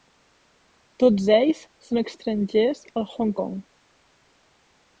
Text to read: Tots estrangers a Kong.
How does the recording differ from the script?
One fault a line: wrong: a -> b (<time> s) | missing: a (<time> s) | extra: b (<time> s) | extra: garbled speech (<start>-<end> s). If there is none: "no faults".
extra: ells són (1.4 s)
extra: Hong (3.1 s)